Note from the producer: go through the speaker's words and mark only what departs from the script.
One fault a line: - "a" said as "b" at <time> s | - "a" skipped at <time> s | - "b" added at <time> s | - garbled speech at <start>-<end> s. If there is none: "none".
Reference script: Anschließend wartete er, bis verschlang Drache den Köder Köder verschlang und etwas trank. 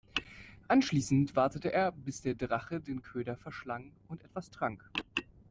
- "verschlang" said as "der" at 2.2 s
- "Köder" skipped at 3.3 s